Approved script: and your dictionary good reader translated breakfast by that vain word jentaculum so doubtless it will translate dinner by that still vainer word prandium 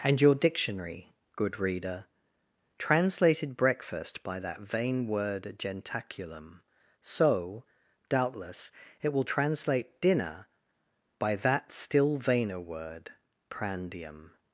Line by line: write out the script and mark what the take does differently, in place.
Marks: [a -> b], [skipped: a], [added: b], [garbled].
and your dictionary good reader translated breakfast by that vain word jentaculum so doubtless it will translate dinner by that still vainer word prandium